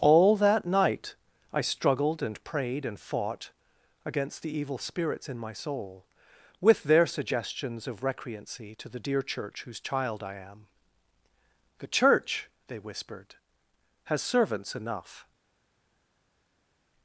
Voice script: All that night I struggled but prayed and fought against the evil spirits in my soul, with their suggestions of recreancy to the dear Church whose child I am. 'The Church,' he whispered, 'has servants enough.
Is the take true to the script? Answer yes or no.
no